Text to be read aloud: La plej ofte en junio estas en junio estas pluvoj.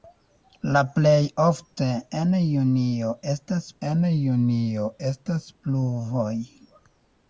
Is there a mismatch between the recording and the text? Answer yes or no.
no